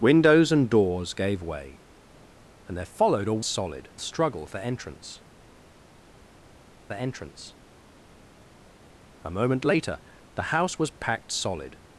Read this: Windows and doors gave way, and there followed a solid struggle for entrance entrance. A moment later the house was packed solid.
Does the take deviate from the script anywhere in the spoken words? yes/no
no